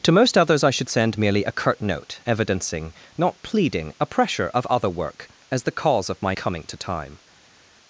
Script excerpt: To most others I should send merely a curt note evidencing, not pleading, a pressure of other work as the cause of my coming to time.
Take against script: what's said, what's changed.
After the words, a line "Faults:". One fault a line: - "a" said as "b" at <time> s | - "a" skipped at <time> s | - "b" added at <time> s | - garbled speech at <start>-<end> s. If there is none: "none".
To most others I should send merely a curt note evidencing, not pleading, a pressure of other work as the cause of my coming to time.
Faults:
none